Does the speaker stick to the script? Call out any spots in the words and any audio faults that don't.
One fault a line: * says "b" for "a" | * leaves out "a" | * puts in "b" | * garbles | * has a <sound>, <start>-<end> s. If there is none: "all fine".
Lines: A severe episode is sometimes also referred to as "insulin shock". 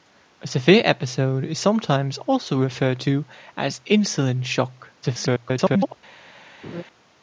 * garbles
* has a laugh, 6.6-6.8 s